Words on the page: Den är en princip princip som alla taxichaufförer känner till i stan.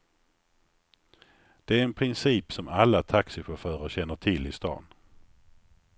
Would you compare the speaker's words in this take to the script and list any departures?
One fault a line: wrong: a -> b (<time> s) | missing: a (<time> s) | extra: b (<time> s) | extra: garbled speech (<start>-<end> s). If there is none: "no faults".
wrong: Den -> Det (1.6 s)
missing: princip (2.5 s)